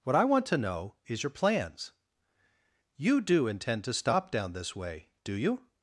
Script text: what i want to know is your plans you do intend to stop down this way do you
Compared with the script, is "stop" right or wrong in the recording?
right